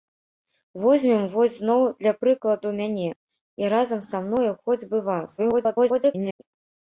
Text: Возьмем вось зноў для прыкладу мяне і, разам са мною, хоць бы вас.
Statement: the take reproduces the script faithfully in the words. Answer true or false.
false